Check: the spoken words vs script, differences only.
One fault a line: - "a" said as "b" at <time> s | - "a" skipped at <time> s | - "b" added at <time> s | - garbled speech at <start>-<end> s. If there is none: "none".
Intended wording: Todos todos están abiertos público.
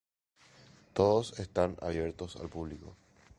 - "todos" skipped at 1.4 s
- "al" added at 2.4 s